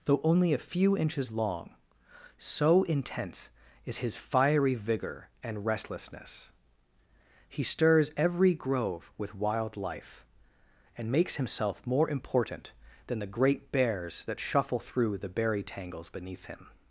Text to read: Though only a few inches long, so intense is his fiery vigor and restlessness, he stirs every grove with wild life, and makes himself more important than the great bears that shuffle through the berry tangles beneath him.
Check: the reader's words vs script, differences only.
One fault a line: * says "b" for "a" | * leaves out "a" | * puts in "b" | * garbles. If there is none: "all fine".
all fine